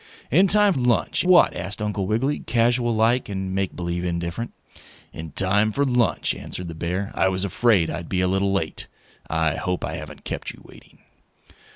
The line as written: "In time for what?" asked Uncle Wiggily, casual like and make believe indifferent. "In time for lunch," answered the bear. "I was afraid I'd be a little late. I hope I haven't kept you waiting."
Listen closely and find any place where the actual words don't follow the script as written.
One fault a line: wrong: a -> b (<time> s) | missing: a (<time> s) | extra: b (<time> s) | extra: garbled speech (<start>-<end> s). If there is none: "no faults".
wrong: for -> lunch (0.7 s)